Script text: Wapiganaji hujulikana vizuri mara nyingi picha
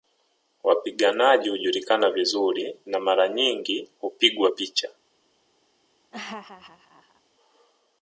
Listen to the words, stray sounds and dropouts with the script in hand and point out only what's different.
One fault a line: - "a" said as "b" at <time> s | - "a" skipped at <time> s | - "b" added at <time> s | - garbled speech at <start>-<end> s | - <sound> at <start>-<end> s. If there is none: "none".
- "na" added at 2.9 s
- "hupigwa" added at 4.0 s
- laugh at 6.1-7.2 s